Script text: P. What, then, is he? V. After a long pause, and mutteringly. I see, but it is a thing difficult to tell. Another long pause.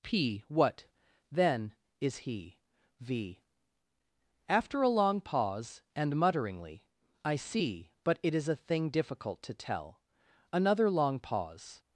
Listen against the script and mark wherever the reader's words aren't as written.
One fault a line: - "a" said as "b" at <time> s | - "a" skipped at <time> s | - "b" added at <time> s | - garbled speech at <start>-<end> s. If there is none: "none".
none